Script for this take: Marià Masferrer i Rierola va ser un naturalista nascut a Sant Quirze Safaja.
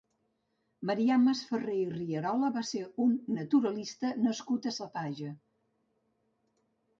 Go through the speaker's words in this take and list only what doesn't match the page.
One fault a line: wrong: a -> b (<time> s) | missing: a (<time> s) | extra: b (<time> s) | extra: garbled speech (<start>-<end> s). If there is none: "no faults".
missing: Sant Quirze (4.8 s)